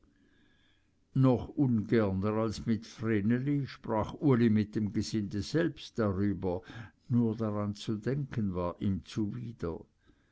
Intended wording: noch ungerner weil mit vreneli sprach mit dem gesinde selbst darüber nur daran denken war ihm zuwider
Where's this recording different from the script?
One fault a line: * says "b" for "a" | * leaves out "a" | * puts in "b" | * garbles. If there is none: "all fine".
* says "als" for "weil"
* puts in "uli"
* puts in "zu"